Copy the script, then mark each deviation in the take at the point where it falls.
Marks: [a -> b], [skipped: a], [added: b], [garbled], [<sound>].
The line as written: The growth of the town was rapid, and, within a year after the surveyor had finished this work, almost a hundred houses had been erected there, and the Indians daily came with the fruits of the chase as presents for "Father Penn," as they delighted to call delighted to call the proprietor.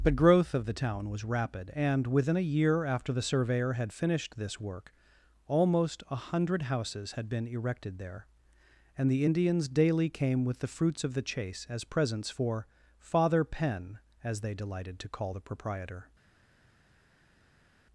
The growth of the town was rapid, and, within a year after the surveyor had finished this work, almost a hundred houses had been erected there, and the Indians daily came with the fruits of the chase as presents for "Father Penn," as they delighted to call [skipped: delighted to call] the proprietor.